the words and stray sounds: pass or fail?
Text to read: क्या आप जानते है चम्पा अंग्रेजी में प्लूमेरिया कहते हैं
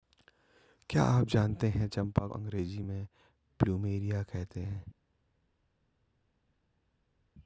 pass